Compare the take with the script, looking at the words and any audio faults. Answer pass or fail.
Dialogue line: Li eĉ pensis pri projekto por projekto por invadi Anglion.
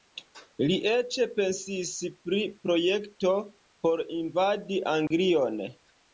fail